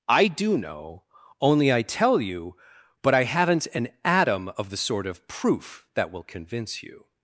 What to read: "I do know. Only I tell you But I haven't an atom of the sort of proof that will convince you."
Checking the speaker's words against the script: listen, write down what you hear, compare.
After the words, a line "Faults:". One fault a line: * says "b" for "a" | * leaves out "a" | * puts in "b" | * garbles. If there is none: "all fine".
"I do know. Only I tell you But I haven't an atom of the sort of proof that will convince you."
Faults:
all fine